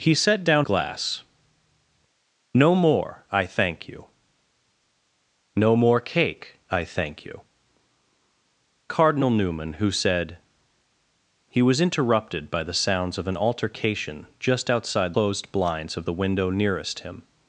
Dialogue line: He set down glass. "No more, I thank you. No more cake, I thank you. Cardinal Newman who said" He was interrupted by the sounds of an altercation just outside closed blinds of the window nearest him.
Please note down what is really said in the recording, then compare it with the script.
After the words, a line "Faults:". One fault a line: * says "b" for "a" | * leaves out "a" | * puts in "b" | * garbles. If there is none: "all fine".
He set down glass. "No more, I thank you. No more cake, I thank you. Cardinal Newman who said" He was interrupted by the sounds of an altercation just outside closed blinds of the window nearest him.
Faults:
all fine